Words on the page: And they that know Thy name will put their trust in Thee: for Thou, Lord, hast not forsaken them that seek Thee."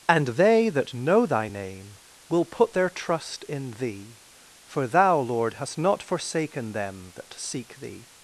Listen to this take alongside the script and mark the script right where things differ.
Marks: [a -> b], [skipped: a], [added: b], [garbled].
And they that know Thy name will put their trust in Thee: for Thou, Lord, hast not forsaken them that seek Thee."